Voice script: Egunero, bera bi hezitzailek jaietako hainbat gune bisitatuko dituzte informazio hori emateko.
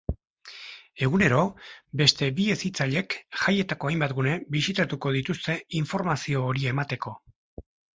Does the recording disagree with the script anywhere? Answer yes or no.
yes